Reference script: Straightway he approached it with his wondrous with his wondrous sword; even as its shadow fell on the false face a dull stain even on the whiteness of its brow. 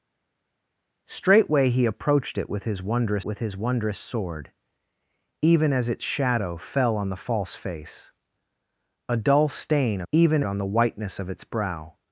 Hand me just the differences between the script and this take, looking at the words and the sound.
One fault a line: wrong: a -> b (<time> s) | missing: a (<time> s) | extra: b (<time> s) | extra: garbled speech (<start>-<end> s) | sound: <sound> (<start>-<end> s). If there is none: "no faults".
no faults